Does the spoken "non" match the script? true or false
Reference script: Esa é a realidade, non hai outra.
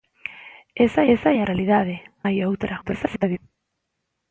false